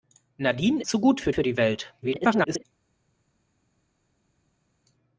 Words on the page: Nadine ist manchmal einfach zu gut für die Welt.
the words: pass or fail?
fail